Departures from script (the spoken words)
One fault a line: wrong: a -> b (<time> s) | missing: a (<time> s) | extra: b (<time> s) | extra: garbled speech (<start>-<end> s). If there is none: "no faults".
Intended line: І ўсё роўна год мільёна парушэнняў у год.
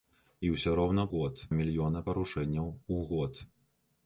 no faults